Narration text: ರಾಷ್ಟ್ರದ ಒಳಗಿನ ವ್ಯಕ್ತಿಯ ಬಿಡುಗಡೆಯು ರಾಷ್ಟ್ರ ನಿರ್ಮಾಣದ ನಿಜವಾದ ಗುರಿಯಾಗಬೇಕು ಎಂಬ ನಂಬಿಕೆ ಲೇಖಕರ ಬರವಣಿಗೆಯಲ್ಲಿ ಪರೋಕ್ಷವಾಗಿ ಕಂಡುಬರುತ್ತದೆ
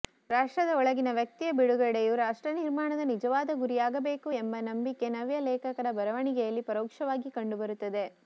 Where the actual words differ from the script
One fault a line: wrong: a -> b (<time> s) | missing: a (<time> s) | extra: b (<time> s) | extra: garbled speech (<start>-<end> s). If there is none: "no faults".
extra: ನವ್ಯ (5.1 s)